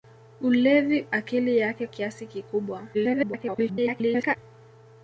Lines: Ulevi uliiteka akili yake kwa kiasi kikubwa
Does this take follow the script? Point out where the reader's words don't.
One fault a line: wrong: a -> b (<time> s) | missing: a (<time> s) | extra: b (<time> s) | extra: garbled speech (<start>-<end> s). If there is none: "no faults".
missing: uliiteka (1.1 s)
missing: kwa (1.9 s)
extra: garbled speech (2.9-4.4 s)